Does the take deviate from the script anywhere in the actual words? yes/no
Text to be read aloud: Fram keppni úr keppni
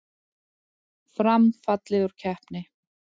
yes